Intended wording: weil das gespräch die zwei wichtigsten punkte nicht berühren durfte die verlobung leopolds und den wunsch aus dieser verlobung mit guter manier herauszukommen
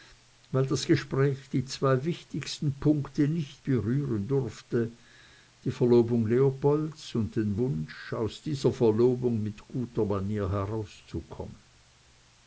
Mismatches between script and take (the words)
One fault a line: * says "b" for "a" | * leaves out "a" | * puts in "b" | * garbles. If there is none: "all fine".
all fine